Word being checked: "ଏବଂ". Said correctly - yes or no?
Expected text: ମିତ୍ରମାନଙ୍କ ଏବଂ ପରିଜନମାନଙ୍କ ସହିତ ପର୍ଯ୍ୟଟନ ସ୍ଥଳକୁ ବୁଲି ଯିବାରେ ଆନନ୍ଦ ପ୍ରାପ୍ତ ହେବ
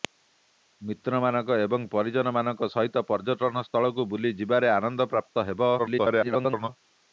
yes